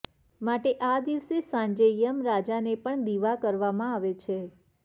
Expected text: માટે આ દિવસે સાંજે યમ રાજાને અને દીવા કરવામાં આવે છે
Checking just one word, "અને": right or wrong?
wrong